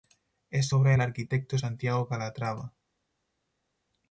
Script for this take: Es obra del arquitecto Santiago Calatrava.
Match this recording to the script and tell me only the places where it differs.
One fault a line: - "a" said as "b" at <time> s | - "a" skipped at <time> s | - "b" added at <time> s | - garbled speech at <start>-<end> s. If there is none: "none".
none